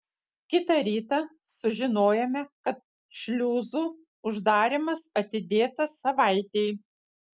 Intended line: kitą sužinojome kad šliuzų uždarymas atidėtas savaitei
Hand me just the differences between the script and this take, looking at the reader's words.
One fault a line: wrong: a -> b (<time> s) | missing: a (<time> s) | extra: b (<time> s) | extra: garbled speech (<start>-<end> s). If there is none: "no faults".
extra: rytą (0.8 s)